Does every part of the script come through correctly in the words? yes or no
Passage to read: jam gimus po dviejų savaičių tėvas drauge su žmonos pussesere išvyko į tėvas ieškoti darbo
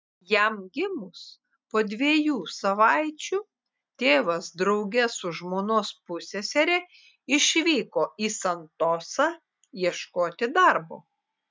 no